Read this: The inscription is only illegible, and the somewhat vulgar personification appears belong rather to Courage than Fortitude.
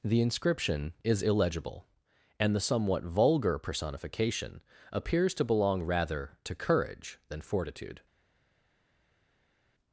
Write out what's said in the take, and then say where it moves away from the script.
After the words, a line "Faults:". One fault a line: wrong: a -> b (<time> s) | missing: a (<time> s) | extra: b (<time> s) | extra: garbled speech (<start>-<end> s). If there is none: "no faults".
The inscription is illegible, and the somewhat vulgar personification appears to belong rather to Courage than Fortitude.
Faults:
missing: only (1.2 s)
extra: to (5.3 s)